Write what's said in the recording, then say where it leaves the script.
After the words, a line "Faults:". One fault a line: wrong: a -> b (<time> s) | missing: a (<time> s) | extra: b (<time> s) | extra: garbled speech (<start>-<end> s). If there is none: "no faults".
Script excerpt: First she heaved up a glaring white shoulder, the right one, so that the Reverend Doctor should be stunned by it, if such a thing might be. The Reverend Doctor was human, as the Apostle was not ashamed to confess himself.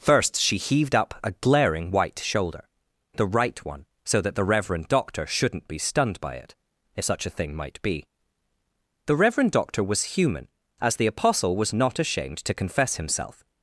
First she heaved up a glaring white shoulder, the right one, so that the Reverend Doctor shouldn't be stunned by it, if such a thing might be. The Reverend Doctor was human, as the Apostle was not ashamed to confess himself.
Faults:
wrong: should -> shouldn't (5.3 s)